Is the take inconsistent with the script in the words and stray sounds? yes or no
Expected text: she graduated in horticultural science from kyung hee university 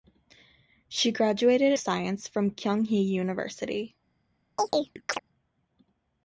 yes